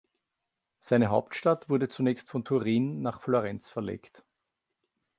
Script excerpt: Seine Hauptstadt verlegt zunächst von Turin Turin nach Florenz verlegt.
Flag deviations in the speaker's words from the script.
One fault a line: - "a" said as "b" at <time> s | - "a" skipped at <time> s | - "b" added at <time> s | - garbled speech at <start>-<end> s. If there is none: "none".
- "verlegt" said as "wurde" at 1.7 s
- "Turin" skipped at 3.0 s